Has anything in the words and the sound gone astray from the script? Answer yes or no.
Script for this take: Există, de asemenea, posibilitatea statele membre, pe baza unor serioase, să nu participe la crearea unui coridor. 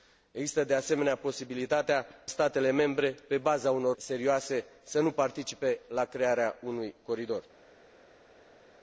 no